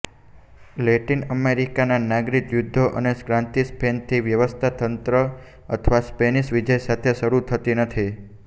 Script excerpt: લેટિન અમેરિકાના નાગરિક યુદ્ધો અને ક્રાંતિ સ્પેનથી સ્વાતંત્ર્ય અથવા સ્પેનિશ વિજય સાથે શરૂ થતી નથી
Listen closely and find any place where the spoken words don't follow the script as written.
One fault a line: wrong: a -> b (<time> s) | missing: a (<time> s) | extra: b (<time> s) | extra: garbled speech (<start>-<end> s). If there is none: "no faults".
no faults